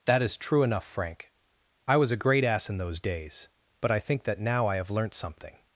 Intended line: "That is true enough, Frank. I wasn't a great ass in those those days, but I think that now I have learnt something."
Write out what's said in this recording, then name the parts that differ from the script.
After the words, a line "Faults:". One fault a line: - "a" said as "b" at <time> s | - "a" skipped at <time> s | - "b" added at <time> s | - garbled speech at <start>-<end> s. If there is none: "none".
"That is true enough, Frank. I was a great ass in those days, but I think that now I have learnt something."
Faults:
- "wasn't" said as "was" at 1.9 s
- "those" skipped at 3.0 s